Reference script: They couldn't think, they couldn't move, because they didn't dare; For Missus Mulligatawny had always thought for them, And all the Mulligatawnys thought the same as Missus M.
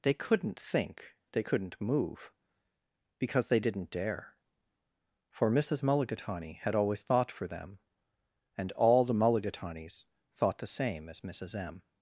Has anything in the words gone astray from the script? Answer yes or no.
no